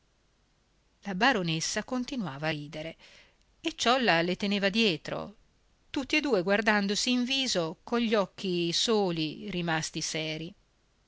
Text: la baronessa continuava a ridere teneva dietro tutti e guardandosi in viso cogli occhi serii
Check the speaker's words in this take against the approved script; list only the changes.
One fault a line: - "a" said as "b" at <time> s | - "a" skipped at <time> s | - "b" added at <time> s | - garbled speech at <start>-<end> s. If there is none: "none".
- "e ciolla le" added at 3.6 s
- "due" added at 6.2 s
- "soli rimasti" added at 8.7 s